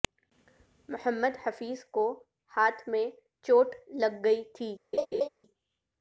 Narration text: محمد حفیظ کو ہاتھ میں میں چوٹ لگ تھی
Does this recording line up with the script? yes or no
no